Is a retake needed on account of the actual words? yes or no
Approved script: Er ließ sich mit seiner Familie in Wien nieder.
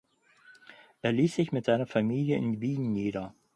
no